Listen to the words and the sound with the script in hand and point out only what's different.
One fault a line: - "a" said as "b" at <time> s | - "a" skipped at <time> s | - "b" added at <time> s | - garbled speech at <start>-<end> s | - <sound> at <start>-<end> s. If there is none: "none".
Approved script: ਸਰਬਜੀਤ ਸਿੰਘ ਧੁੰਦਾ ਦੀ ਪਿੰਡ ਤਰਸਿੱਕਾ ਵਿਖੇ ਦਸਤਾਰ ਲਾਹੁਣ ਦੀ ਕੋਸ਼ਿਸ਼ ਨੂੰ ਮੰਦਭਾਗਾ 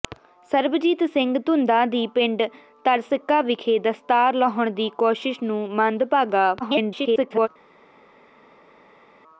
- garbled speech at 6.6-7.5 s